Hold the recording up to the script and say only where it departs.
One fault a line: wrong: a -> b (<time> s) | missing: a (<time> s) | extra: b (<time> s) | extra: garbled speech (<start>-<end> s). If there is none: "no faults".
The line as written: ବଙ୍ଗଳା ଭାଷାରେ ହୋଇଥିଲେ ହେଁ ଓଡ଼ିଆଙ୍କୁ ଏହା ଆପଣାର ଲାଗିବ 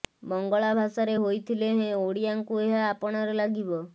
no faults